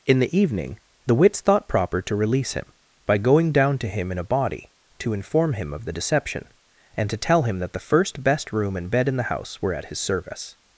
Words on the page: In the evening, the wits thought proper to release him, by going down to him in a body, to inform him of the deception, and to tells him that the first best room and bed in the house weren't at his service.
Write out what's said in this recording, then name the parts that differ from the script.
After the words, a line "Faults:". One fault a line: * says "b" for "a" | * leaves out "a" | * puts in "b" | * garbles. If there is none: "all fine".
In the evening, the wits thought proper to release him, by going down to him in a body, to inform him of the deception, and to tell him that the first best room and bed in the house were at his service.
Faults:
* says "tell" for "tells"
* says "were" for "weren't"